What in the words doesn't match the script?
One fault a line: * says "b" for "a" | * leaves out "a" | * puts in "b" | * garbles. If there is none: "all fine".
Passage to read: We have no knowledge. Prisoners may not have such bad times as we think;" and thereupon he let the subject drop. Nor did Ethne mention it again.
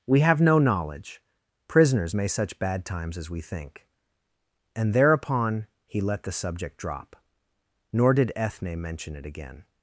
* leaves out "not have"